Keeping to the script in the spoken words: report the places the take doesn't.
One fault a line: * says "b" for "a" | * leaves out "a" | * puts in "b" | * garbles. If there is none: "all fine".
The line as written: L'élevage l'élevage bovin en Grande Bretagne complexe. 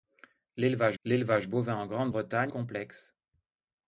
all fine